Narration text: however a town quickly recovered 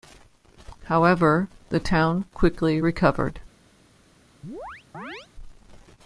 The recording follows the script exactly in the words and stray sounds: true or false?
false